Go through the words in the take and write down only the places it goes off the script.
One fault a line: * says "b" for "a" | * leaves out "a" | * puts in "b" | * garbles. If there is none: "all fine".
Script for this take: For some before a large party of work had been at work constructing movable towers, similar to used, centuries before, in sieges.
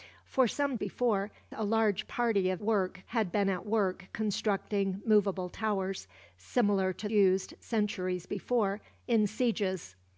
all fine